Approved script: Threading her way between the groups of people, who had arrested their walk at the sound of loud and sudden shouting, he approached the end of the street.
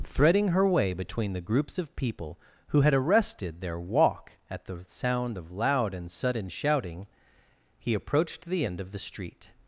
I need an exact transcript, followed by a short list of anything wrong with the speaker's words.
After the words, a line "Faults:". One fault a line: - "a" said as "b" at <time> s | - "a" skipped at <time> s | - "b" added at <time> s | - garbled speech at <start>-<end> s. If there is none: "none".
Threading her way between the groups of people, who had arrested their walk at the sound of loud and sudden shouting, he approached the end of the street.
Faults:
none